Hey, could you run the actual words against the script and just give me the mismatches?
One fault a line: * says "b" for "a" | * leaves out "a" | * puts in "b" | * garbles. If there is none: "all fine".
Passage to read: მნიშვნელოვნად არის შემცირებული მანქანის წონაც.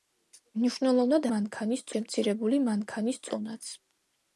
* says "მანქანის" for "არის"